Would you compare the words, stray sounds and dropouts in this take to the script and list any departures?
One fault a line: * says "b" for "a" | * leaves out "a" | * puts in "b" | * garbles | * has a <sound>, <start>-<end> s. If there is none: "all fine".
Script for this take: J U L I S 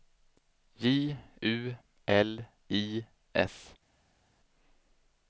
all fine